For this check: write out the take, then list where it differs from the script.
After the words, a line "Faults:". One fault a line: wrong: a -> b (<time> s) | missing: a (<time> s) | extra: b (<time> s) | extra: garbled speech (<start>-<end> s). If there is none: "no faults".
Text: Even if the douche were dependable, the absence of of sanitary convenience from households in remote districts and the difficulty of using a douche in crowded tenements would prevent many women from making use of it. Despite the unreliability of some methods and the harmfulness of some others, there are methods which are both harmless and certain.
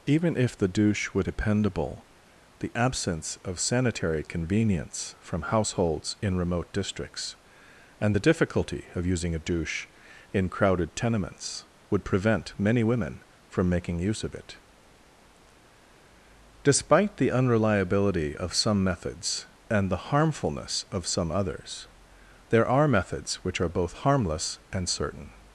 Even if the douche were dependable, the absence of sanitary convenience from households in remote districts and the difficulty of using a douche in crowded tenements would prevent many women from making use of it. Despite the unreliability of some methods and the harmfulness of some others, there are methods which are both harmless and certain.
Faults:
missing: of (3.6 s)